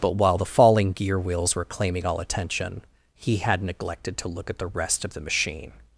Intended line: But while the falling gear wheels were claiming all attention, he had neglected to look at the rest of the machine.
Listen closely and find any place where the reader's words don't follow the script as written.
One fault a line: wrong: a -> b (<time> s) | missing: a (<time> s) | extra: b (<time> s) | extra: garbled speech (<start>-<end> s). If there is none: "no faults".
no faults